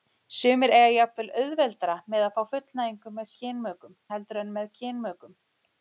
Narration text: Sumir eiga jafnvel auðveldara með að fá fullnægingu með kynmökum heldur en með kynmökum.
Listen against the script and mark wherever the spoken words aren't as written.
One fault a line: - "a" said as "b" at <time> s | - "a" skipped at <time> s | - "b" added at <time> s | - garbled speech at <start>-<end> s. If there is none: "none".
none